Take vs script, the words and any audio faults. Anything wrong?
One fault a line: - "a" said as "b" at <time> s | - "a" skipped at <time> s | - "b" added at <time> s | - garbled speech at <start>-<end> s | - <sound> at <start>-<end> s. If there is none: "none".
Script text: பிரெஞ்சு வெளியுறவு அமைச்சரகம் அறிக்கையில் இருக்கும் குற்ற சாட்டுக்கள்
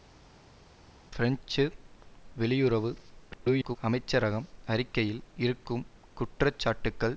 - garbled speech at 3.3-3.8 s